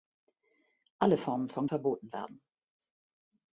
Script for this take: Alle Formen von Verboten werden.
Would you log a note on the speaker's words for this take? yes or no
no